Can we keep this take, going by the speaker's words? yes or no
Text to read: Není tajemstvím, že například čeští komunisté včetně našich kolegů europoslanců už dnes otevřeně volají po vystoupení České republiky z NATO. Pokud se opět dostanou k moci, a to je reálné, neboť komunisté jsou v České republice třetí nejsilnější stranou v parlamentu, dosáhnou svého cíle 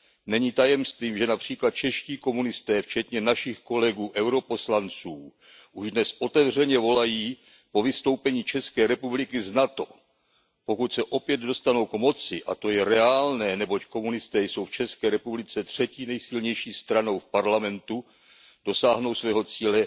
yes